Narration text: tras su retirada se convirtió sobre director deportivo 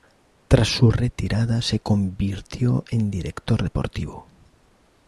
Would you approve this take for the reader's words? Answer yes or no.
no